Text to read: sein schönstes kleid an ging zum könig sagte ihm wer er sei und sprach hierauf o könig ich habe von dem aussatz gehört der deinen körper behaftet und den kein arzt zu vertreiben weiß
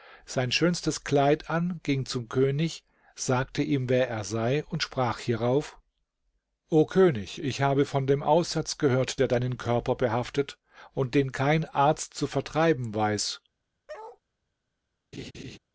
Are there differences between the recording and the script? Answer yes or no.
no